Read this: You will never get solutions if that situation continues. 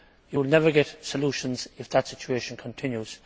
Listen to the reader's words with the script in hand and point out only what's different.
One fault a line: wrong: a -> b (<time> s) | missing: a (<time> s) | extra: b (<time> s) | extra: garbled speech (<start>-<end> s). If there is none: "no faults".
no faults